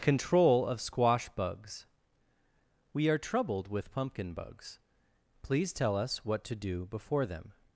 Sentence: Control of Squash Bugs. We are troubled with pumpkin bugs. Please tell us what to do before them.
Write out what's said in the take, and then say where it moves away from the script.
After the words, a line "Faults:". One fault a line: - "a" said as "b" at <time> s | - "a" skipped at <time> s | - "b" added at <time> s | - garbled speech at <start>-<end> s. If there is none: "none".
Control of Squash Bugs. We are troubled with pumpkin bugs. Please tell us what to do before them.
Faults:
none